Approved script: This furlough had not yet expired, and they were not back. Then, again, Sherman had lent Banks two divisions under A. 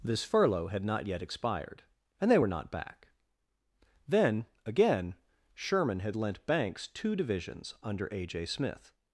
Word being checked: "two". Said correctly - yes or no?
yes